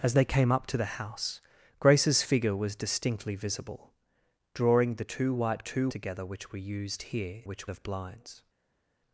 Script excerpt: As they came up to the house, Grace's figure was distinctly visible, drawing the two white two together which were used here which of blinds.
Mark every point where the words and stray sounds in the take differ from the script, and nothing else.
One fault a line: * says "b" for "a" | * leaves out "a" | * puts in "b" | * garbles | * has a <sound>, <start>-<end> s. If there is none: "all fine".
all fine